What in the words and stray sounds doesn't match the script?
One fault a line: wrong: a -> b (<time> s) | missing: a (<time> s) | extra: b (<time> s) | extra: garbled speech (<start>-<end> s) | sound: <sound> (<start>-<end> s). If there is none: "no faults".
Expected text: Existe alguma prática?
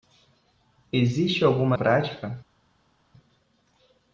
no faults